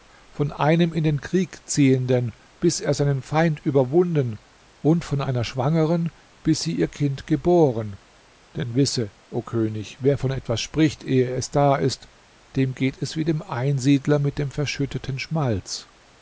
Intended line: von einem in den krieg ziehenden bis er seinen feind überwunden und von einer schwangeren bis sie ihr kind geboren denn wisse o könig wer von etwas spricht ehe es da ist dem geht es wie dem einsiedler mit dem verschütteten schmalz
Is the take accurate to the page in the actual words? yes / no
yes